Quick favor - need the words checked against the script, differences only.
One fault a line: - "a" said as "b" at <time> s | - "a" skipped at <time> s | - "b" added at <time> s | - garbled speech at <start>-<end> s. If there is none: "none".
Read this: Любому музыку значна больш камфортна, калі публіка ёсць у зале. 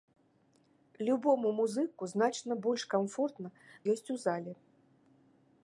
- "калі публіка" skipped at 3.5 s